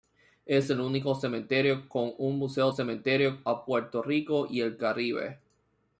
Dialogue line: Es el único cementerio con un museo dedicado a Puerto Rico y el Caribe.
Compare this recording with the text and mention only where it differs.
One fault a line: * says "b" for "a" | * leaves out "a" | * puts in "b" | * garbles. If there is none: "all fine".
* says "cementerio" for "dedicado"